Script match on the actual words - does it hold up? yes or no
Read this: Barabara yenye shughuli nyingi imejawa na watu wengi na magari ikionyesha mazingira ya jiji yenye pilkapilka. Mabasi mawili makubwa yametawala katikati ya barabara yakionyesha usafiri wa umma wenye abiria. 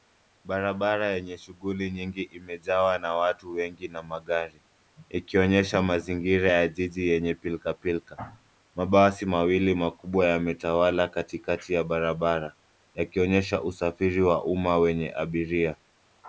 yes